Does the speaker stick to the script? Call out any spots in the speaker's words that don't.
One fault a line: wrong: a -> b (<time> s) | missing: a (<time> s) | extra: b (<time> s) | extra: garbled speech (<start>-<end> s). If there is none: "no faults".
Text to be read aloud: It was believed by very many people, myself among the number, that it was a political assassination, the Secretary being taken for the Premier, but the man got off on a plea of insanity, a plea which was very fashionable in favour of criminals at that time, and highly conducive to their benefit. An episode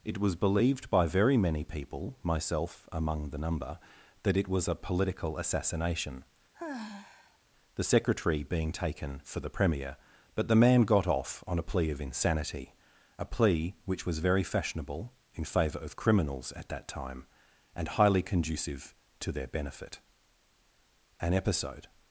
no faults